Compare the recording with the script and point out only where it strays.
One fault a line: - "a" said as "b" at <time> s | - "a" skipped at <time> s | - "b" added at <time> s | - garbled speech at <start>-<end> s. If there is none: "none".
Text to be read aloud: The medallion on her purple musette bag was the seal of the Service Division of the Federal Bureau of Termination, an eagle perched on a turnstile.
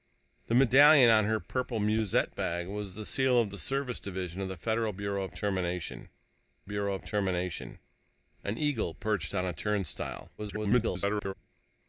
- "Bureau of Termination" added at 6.6 s
- garbled speech at 10.4-11.3 s